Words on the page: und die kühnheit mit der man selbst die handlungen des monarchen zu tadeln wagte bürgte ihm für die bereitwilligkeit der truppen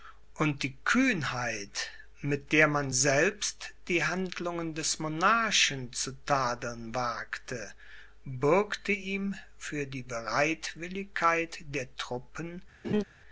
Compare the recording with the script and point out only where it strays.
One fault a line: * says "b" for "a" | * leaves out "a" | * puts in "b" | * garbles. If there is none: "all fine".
all fine